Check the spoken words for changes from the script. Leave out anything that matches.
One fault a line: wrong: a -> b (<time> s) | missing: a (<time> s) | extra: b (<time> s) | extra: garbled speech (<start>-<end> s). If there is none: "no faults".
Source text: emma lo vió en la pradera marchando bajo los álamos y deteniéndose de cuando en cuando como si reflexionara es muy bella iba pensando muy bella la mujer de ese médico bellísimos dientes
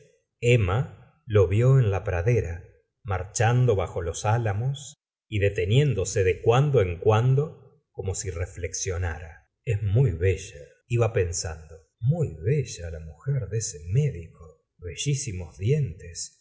no faults